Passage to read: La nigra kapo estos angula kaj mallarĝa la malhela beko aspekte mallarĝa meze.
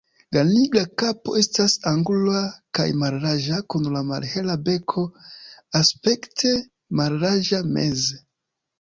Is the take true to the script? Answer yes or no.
no